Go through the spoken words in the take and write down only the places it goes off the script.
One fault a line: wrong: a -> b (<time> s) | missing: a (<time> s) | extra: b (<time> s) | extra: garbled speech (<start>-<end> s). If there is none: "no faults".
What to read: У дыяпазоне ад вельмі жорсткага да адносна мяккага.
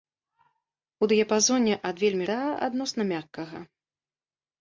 missing: жорсткага (2.2 s)